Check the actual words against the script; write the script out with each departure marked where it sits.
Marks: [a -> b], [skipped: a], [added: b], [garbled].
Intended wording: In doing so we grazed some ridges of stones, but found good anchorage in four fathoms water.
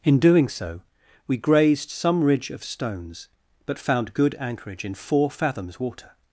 In doing so we grazed some [ridges -> ridge] of stones, but found good anchorage in four fathoms water.